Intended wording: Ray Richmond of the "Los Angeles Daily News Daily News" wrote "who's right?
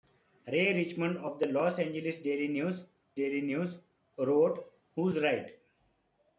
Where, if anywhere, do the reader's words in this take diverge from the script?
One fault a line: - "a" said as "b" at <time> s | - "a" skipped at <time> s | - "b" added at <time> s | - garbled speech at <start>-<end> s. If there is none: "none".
none